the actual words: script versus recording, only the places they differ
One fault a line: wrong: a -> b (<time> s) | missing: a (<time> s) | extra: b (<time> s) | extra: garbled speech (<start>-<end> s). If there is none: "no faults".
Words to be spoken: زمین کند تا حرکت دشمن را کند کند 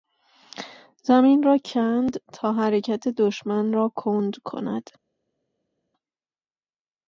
extra: را (1.4 s)